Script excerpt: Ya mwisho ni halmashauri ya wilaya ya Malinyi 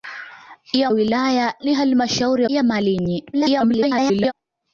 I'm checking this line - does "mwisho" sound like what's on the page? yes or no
no